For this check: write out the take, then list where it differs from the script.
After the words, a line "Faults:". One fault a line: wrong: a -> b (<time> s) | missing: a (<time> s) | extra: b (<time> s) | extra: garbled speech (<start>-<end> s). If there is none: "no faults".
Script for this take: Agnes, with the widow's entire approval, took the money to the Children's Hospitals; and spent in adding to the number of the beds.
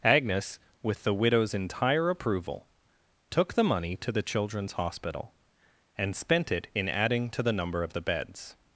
Agnes, with the widow's entire approval, took the money to the Children's Hospital; and spent it in adding to the number of the beds.
Faults:
wrong: Hospitals -> Hospital (4.7 s)
extra: it (6.5 s)